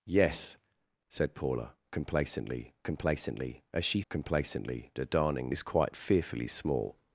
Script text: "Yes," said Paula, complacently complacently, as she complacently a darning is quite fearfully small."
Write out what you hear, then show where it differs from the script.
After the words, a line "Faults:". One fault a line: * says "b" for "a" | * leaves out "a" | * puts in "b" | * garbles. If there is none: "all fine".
"Yes," said Paula, complacently complacently, as she complacently a darning is quite fearfully small."
Faults:
all fine